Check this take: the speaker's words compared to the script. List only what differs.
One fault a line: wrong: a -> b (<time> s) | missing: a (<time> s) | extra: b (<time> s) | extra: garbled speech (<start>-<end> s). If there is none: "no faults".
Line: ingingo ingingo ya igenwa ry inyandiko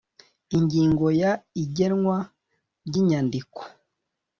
missing: ingingo (1.1 s)